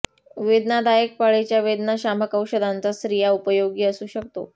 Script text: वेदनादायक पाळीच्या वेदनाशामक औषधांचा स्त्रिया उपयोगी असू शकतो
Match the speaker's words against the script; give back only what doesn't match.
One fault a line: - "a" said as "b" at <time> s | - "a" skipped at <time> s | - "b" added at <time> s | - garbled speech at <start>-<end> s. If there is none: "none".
none